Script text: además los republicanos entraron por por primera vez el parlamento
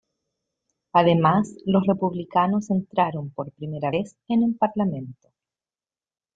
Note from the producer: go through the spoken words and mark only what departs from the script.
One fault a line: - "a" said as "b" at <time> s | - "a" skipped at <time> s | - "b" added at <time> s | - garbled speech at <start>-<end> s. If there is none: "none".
- "por" skipped at 3.5 s
- "en" added at 4.3 s